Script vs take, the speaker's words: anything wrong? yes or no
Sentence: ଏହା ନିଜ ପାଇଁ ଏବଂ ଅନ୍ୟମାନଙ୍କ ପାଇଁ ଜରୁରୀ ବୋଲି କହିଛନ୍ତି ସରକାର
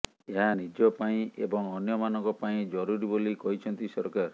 no